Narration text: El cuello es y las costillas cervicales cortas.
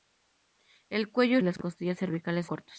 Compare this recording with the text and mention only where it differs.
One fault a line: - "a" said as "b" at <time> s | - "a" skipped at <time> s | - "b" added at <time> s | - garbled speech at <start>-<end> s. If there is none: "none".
none